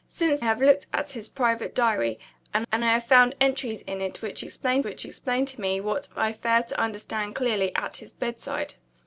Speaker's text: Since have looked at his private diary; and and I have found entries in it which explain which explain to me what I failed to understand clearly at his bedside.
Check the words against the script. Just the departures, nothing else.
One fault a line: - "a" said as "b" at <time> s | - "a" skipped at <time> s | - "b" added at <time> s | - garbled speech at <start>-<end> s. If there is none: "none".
none